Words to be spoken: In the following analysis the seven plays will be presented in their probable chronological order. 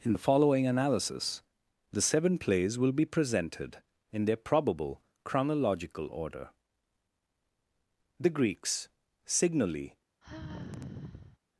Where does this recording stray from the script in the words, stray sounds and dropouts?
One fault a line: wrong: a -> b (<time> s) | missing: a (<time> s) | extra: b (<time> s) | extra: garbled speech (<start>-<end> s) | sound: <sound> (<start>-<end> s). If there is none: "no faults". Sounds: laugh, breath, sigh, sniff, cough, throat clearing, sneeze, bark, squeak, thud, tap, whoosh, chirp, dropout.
extra: The Greeks signally (8.2 s)
sound: sigh (10.2-11.4 s)